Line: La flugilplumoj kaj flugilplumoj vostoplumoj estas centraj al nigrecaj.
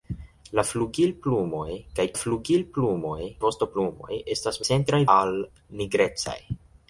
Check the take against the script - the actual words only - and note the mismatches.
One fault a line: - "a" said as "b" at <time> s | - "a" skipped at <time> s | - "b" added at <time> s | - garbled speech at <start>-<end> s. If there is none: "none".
none